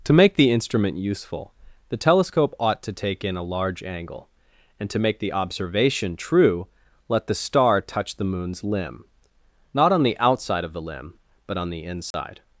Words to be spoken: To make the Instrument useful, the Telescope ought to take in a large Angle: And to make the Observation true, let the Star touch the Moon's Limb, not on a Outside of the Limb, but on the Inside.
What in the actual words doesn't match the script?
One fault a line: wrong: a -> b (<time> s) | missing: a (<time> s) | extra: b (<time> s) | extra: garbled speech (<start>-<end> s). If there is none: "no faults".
wrong: a -> the (10.0 s)